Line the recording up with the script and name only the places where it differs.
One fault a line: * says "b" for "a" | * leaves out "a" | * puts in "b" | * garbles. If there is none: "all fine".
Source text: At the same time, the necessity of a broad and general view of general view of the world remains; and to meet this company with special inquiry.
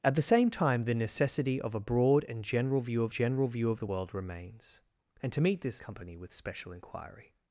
all fine